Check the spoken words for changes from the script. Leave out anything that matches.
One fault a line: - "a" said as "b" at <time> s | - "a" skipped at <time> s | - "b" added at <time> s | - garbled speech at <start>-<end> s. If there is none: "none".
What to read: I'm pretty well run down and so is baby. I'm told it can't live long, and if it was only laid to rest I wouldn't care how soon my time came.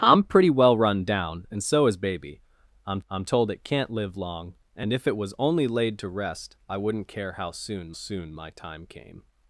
- "I'm" added at 3.1 s
- "soon" added at 7.9 s